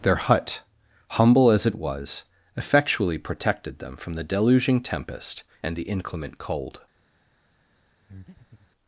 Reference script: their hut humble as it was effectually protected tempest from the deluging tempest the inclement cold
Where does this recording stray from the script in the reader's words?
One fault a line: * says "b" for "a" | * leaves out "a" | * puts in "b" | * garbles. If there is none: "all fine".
* says "them" for "tempest"
* puts in "and"